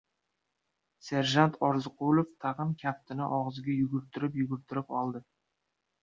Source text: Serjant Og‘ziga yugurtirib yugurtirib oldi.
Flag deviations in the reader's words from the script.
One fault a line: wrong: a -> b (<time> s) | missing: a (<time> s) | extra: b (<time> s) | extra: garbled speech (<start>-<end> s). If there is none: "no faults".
extra: Orziqulov tag‘in kaftini (1.7 s)